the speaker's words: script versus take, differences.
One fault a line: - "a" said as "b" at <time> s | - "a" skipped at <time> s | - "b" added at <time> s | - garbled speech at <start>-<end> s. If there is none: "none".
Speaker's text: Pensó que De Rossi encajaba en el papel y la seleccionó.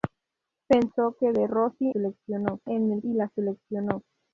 - "encajaba" said as "seleccionó" at 1.9 s
- "papel" skipped at 3.0 s